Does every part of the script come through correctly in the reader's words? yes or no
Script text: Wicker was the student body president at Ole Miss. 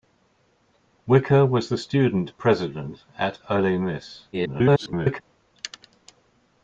no